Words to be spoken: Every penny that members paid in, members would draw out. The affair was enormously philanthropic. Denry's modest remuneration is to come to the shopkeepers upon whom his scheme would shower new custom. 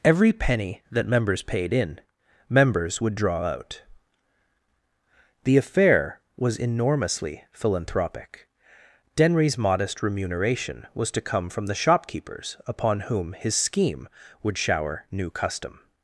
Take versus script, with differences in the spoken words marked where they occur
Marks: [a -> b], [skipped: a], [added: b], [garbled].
Every penny that members paid in, members would draw out. The affair was enormously philanthropic. Denry's modest remuneration [is -> was] to come [to -> from] the shopkeepers upon whom his scheme would shower new custom.